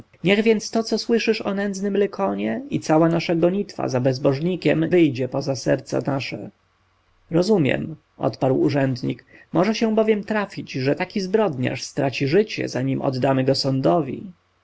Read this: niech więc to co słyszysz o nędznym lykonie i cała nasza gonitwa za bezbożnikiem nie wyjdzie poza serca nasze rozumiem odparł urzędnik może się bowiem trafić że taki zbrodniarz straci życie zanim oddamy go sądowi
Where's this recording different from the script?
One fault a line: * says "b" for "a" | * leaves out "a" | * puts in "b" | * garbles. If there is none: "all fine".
* leaves out "nie"